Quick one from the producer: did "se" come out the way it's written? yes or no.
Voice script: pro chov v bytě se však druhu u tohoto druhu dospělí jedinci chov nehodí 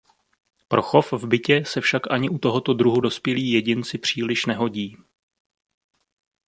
yes